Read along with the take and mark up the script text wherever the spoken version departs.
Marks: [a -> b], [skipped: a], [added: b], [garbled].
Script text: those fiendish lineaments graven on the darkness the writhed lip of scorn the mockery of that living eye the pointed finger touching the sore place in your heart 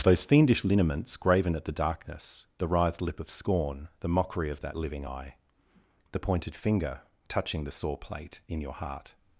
those fiendish lineaments graven [on -> at] the darkness the writhed lip of scorn the mockery of that living eye the pointed finger touching the sore [place -> plate] in your heart